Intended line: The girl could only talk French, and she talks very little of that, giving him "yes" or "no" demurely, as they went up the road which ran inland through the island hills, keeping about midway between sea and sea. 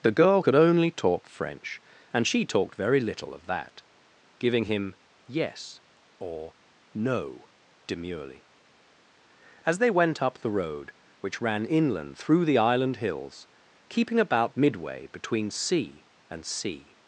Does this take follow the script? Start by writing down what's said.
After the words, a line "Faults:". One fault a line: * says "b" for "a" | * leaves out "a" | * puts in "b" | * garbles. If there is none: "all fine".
The girl could only talk French, and she talked very little of that, giving him "yes" or "no" demurely, as they went up the road which ran inland through the island hills, keeping about midway between sea and sea.
Faults:
* says "talked" for "talks"